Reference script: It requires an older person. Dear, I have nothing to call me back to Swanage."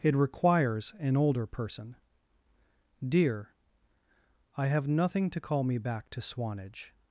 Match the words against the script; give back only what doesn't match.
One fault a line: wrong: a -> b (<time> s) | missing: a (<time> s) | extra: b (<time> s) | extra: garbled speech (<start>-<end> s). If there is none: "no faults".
no faults